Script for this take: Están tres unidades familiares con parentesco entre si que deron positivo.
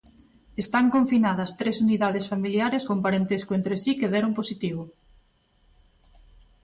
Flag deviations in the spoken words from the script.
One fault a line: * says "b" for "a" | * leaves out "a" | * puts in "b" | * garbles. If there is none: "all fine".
* puts in "confinadas"